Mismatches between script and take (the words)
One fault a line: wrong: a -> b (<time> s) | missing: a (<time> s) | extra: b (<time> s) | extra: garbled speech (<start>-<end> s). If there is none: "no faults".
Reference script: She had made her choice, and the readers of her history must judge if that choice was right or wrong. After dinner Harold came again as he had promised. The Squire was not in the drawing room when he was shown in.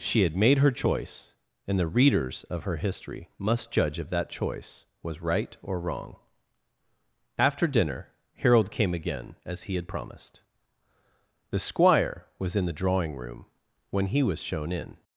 missing: not (12.6 s)